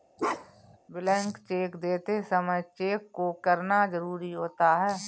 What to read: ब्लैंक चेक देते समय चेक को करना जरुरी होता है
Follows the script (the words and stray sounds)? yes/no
no